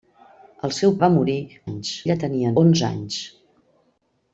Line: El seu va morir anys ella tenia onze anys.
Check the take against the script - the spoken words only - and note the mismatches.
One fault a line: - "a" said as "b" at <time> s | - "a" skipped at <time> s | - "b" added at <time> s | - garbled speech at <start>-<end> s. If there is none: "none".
none